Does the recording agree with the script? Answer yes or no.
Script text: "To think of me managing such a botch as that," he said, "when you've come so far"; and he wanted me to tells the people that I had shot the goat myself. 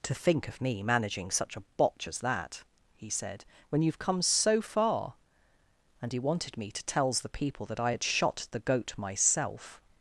yes